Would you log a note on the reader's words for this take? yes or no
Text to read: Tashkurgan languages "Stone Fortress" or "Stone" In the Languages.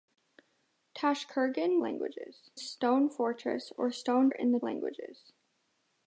no